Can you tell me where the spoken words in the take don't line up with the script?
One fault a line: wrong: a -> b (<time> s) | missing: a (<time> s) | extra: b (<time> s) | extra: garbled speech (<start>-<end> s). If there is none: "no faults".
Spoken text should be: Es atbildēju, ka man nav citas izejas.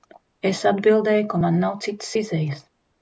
no faults